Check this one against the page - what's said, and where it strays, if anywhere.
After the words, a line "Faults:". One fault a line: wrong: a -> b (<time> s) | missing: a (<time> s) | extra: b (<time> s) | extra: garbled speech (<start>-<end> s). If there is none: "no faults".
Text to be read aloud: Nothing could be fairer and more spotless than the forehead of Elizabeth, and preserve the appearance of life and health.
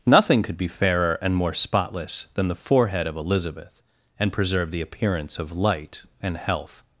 Nothing could be fairer and more spotless than the forehead of Elizabeth, and preserve the appearance of light and health.
Faults:
wrong: life -> light (5.5 s)